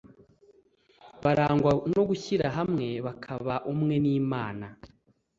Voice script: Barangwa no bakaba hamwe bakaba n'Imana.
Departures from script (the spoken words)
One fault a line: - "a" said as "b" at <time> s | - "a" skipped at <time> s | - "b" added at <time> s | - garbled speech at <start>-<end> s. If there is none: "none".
- "bakaba" said as "gushyira" at 2.1 s
- "umwe" added at 3.7 s